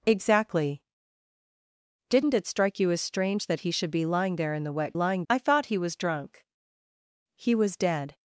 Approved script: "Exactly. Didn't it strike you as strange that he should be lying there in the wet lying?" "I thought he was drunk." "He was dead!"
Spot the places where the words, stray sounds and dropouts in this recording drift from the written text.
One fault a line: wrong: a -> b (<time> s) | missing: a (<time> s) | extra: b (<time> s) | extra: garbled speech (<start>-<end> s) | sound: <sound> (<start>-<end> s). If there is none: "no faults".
no faults